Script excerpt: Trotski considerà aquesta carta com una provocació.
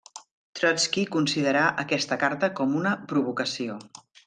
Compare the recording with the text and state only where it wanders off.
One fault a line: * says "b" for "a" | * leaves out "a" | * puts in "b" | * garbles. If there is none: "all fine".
all fine